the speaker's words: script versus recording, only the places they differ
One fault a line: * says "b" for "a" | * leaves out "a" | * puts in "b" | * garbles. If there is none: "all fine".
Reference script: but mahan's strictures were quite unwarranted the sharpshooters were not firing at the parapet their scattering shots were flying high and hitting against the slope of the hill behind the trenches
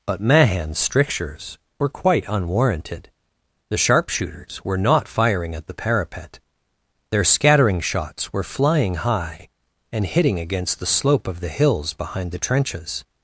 * says "hills" for "hill"